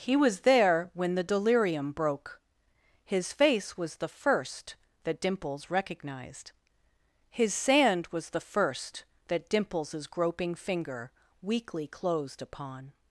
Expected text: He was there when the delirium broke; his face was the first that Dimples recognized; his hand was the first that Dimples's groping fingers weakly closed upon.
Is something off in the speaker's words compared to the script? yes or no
yes